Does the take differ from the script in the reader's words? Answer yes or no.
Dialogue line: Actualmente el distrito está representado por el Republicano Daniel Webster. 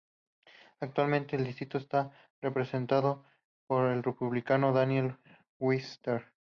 no